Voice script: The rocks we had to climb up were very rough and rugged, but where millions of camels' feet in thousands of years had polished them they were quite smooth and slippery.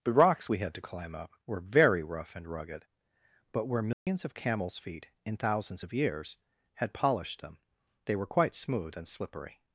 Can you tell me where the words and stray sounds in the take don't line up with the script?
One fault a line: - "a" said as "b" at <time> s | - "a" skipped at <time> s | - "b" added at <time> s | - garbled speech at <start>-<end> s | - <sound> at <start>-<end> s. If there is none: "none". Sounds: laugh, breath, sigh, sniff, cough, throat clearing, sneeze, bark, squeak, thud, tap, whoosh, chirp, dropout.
- dropout at 3.9-4.1 s